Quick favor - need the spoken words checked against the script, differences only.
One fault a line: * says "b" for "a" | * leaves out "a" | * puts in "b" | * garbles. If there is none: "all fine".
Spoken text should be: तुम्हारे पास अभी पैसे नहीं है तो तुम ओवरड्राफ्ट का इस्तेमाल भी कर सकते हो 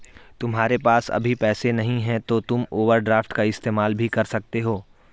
all fine